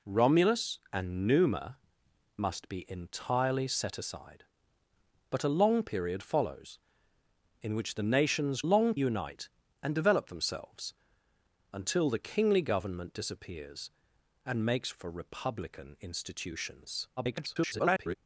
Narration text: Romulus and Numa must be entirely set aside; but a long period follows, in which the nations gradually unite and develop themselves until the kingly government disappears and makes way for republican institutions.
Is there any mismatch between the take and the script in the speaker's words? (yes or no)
yes